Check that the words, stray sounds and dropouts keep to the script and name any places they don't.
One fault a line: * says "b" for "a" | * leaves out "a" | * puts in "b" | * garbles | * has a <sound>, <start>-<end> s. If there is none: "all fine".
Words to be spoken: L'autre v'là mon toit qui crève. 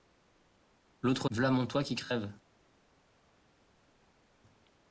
all fine